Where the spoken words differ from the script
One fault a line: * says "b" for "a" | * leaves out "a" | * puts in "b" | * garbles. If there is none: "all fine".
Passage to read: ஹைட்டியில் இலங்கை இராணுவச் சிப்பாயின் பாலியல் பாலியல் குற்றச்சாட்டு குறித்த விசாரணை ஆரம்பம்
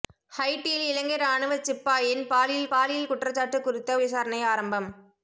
all fine